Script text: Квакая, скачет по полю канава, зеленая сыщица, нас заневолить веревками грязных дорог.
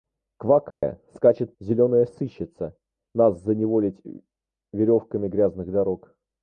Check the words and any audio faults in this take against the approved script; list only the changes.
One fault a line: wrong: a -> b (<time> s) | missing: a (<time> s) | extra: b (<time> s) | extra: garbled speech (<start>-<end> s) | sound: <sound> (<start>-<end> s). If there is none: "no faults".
sound: dropout (0.7-0.8 s)
missing: по полю канава (1.5 s)